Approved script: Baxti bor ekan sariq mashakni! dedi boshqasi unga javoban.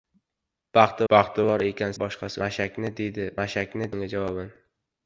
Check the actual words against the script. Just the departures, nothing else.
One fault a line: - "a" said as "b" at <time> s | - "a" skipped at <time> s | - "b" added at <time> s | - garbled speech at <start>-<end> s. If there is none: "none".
- "baxti" added at 1.1 s
- "sariq" said as "boshqasi" at 2.0 s
- "boshqasi" said as "mashakni" at 3.4 s